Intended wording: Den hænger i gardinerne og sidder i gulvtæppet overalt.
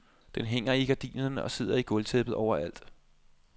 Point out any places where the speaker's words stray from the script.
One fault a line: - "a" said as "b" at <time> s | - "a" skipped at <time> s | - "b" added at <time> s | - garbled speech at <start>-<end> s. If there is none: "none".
none